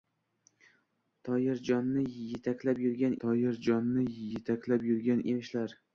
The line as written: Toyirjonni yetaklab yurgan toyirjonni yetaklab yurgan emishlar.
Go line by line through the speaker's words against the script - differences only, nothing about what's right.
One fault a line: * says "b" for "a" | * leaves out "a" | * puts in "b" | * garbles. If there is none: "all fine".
all fine